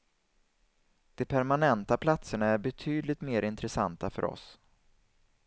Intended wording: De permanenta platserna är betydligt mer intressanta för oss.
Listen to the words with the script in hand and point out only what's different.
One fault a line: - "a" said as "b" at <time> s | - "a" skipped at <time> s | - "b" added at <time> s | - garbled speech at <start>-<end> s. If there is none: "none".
none